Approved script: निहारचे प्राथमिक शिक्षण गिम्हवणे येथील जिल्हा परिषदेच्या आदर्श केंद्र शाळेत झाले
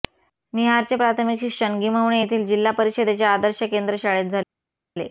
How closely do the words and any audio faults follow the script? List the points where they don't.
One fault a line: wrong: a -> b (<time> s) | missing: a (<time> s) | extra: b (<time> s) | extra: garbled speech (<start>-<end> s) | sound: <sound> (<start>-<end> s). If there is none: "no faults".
no faults